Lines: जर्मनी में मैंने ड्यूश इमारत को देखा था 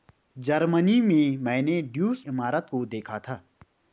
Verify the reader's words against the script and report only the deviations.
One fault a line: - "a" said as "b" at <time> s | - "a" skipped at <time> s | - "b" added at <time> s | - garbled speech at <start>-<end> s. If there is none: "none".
none